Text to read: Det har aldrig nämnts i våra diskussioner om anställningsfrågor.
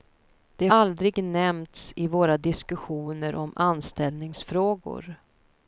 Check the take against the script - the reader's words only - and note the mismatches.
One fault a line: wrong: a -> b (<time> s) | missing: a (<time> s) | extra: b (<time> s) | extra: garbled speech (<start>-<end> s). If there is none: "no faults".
missing: har (0.7 s)